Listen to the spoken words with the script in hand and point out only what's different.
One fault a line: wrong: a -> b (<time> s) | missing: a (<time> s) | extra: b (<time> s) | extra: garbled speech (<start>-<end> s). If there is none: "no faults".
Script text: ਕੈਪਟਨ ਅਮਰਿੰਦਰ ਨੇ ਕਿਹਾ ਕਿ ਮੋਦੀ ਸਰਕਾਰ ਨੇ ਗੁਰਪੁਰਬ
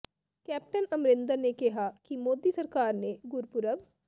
no faults